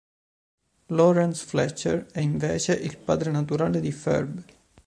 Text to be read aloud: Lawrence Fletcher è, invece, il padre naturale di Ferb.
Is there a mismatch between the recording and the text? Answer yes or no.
no